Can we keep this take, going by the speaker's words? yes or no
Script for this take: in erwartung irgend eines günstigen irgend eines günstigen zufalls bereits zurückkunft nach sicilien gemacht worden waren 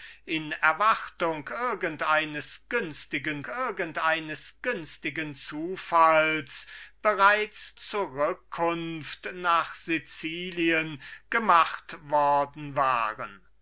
yes